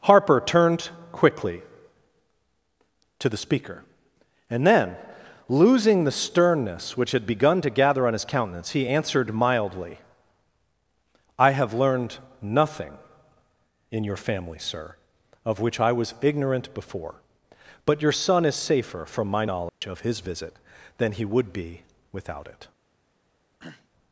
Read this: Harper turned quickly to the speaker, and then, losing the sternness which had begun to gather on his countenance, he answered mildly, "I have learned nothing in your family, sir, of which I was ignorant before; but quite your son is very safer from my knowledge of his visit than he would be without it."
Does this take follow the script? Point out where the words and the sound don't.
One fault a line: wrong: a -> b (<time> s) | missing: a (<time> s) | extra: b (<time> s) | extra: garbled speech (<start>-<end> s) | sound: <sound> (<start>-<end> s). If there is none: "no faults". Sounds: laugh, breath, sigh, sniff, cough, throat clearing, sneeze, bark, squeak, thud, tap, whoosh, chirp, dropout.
missing: quite (18.0 s)
missing: very (18.5 s)
sound: dropout (19.7-19.8 s)
sound: throat clearing (23.6-23.9 s)